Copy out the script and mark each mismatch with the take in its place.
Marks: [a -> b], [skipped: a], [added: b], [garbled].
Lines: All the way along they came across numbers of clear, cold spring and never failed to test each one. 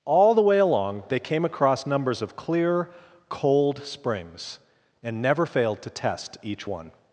All the way along they came across numbers of clear, cold [spring -> springs] and never failed to test each one.